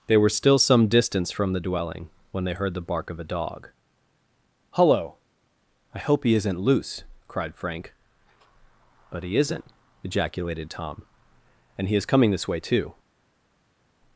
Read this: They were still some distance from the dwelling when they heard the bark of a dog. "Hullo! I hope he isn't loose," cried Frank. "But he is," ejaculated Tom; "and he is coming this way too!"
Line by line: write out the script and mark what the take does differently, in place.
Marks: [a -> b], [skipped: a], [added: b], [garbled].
They were still some distance from the dwelling when they heard the bark of a dog. "Hullo! I hope he isn't loose," cried Frank. "But he [is," -> isn't] ejaculated Tom; "and he is coming this way too!"